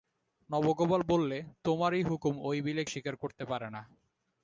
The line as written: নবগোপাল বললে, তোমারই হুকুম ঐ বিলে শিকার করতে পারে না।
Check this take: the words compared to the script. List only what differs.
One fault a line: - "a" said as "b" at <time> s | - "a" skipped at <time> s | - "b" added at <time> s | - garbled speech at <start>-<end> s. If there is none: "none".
none